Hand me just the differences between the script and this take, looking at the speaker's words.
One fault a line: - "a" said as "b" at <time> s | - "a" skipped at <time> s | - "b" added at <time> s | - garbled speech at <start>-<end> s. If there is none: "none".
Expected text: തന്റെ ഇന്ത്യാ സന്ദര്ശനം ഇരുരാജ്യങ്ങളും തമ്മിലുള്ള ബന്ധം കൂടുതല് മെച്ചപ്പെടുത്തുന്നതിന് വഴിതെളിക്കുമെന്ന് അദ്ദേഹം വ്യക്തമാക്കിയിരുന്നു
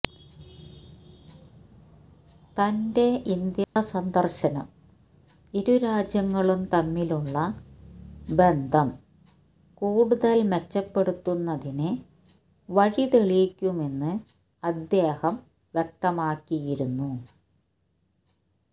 none